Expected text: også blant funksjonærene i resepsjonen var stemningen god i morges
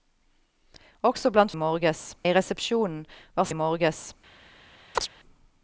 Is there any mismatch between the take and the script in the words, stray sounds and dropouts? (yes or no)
yes